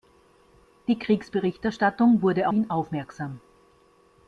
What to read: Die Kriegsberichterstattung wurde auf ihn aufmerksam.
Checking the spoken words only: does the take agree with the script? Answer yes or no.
no